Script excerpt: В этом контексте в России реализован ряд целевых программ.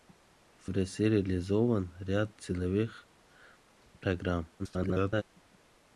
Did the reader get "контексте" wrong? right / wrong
wrong